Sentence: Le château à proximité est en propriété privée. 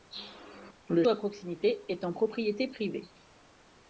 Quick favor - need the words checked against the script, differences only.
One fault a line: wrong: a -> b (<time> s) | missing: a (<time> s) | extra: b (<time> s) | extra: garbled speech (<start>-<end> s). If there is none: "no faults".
missing: château (1.1 s)